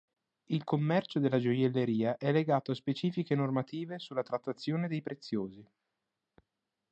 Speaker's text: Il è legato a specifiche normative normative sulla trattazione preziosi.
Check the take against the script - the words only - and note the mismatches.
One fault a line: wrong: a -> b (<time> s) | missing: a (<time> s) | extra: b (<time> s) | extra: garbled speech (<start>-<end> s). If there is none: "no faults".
extra: commercio della gioielleria (0.6 s)
missing: normative (4.0 s)
extra: dei (4.9 s)